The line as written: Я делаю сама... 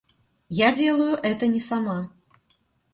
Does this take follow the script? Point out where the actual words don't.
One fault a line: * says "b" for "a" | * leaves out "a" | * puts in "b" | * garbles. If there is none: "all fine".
* puts in "это не"